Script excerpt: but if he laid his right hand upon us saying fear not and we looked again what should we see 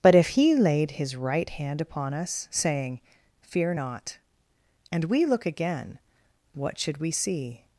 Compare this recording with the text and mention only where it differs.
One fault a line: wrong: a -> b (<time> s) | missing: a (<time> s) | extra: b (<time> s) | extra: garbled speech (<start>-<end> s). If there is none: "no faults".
wrong: looked -> look (5.3 s)